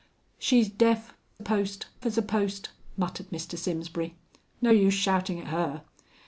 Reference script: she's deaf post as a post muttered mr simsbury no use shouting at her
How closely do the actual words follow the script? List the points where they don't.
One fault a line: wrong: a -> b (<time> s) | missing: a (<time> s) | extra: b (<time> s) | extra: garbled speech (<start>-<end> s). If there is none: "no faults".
no faults